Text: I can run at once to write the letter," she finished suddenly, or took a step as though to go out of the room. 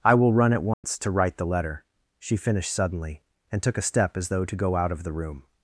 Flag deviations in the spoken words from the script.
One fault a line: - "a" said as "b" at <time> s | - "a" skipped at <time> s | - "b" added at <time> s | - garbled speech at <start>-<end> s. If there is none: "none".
- "can" said as "will" at 0.1 s
- "or" said as "and" at 3.5 s